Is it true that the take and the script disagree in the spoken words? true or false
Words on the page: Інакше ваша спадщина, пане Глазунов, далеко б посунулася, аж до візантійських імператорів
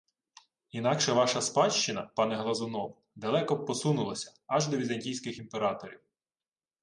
false